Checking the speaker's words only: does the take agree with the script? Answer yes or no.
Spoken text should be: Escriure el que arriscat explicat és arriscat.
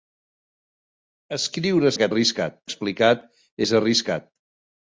yes